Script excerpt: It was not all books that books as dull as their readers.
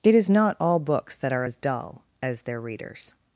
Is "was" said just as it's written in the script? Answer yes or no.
no